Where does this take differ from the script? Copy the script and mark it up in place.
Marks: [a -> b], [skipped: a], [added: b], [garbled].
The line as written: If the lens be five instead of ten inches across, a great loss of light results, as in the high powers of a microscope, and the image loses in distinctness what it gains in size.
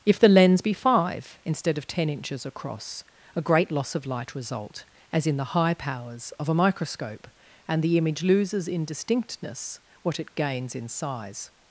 If the lens be five instead of ten inches across, a great loss of light [results, -> result] as in the high powers of a microscope, and the image loses in distinctness what it gains in size.